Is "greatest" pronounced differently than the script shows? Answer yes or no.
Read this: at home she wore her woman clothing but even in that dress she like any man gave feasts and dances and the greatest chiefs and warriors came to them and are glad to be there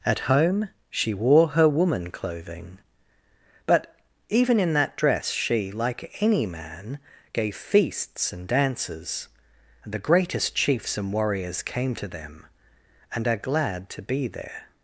no